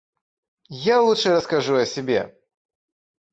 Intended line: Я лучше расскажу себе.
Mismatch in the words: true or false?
true